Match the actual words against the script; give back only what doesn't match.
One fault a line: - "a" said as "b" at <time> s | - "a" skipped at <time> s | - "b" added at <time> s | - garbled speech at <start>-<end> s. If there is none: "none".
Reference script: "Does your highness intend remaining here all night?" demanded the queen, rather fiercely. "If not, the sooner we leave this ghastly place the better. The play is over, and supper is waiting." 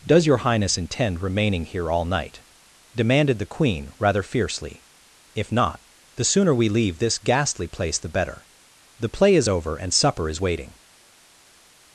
none